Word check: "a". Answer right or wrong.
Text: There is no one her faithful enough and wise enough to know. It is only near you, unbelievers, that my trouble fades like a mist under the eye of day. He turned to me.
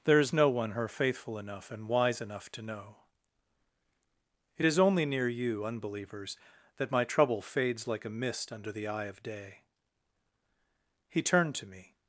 right